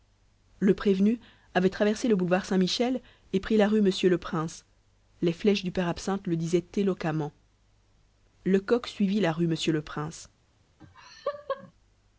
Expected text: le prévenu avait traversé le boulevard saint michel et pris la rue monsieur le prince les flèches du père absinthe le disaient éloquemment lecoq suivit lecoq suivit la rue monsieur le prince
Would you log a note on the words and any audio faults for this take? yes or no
yes